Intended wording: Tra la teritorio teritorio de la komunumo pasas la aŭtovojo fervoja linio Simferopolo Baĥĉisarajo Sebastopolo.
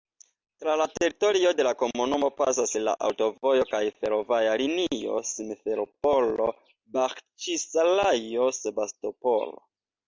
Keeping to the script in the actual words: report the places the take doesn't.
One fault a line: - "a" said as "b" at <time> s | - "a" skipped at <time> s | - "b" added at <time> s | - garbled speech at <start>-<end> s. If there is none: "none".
- "teritorio" skipped at 1.5 s
- "kaj" added at 3.7 s